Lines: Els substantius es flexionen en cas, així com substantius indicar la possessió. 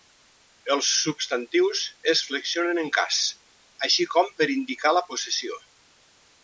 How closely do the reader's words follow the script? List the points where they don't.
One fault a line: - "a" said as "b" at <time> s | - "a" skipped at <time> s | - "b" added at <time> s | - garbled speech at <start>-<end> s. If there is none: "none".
- "substantius" said as "per" at 4.4 s